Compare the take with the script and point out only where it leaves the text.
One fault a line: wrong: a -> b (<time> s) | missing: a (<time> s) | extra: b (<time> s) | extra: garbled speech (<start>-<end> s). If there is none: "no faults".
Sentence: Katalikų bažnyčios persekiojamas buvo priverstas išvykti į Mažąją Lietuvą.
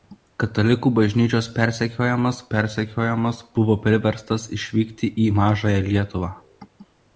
extra: persekiojamas (2.5 s)